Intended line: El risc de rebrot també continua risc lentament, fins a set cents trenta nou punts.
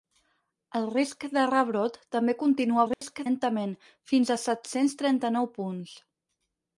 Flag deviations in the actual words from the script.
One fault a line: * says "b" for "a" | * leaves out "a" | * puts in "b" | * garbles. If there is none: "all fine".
all fine